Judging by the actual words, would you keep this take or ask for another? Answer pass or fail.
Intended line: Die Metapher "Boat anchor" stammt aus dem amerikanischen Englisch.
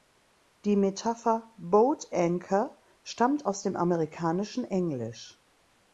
pass